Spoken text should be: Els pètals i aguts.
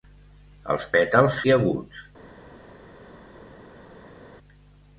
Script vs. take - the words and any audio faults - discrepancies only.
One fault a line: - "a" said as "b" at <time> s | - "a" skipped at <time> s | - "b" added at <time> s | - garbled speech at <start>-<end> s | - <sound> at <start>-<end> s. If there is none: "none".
none